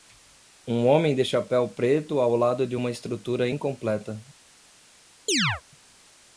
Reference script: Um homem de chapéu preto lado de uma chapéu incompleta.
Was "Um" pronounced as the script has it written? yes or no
yes